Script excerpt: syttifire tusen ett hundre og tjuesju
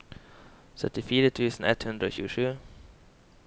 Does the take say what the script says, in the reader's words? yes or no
yes